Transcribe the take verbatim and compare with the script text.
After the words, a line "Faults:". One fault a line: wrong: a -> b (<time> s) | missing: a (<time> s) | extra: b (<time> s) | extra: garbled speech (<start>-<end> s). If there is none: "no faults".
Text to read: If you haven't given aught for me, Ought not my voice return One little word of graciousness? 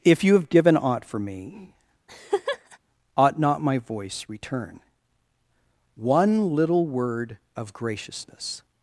If you have given aught for me, Ought not my voice return One little word of graciousness?
Faults:
wrong: haven't -> have (0.3 s)